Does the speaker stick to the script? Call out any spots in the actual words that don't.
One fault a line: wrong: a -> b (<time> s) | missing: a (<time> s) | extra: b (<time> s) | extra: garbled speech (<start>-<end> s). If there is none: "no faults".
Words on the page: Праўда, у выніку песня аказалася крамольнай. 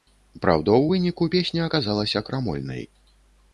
no faults